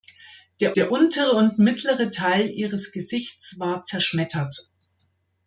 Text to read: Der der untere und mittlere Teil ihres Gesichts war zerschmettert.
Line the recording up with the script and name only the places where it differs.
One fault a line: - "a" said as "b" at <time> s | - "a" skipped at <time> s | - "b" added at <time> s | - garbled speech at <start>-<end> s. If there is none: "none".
none